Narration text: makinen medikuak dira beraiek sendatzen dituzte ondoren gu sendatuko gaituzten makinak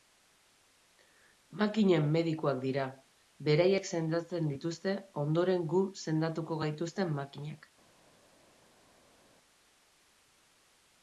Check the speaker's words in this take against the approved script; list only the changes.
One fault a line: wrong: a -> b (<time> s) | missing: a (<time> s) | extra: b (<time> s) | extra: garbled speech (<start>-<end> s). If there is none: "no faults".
no faults